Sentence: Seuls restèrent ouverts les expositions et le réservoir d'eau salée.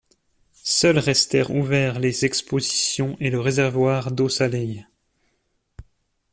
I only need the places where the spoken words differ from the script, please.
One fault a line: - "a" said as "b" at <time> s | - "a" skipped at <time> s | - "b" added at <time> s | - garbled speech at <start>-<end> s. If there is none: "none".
none